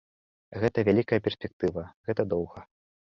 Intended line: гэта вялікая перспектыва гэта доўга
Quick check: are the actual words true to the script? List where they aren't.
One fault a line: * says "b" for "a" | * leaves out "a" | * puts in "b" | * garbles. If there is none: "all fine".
all fine